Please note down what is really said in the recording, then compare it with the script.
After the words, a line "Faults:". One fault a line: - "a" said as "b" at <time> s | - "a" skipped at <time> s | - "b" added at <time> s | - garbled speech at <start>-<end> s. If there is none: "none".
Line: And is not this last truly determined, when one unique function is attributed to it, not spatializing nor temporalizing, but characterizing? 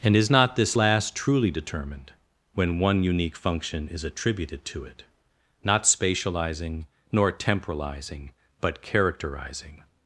And is not this last truly determined, when one unique function is attributed to it, not spatializing nor temporalizing, but characterizing?
Faults:
none